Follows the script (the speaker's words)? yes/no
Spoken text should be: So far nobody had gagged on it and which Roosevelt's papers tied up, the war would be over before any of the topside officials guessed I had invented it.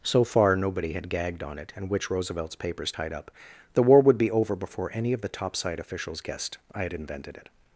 yes